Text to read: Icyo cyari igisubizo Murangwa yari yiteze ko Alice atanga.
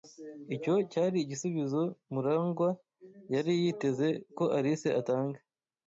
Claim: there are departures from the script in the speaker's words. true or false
false